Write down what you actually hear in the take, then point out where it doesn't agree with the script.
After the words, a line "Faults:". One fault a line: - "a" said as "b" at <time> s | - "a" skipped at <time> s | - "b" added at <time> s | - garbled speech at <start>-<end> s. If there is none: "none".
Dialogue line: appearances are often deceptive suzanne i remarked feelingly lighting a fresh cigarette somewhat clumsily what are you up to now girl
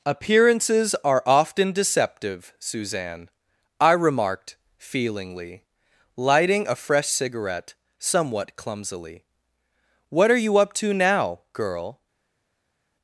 appearances are often deceptive suzanne i remarked feelingly lighting a fresh cigarette somewhat clumsily what are you up to now girl
Faults:
none